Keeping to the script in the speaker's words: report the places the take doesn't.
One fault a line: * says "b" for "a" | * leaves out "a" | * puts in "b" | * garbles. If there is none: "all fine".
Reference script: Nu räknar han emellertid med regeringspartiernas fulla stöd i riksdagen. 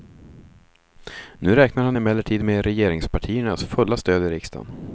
all fine